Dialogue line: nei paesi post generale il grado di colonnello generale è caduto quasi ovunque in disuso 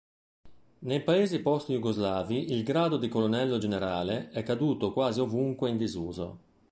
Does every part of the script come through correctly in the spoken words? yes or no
no